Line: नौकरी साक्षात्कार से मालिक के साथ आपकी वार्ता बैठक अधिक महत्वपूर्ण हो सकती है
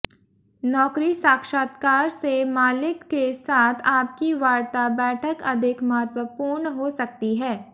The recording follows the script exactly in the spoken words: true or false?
true